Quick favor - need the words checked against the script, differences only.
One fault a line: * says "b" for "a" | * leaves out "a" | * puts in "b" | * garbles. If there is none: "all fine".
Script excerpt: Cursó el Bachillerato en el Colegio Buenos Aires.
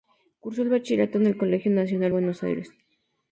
* puts in "Nacional"